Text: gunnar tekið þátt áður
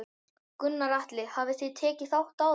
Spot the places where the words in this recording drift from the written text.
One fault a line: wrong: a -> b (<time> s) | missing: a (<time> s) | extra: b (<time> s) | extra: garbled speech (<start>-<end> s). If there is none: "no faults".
extra: atli hafið þið (1.0 s)